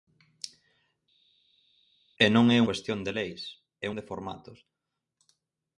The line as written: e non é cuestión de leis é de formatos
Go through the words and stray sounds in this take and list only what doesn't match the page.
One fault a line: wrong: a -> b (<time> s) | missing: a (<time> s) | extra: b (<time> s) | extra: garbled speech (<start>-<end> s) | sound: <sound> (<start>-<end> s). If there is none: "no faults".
no faults